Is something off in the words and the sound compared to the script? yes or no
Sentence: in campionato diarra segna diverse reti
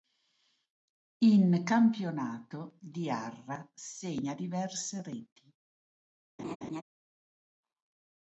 yes